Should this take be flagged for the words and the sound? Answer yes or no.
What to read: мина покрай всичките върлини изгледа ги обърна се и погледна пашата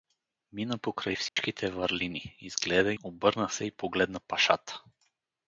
yes